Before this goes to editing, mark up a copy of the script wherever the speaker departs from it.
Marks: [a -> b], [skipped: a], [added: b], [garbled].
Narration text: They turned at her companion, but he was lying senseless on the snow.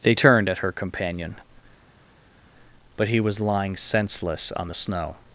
They turned at her companion, but he was lying senseless on the snow.